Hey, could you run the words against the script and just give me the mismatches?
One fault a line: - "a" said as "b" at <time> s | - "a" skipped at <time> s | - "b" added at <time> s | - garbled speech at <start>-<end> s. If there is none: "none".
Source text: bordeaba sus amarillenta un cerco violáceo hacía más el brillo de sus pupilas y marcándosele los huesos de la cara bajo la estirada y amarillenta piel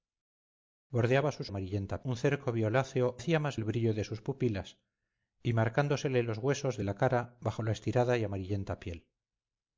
none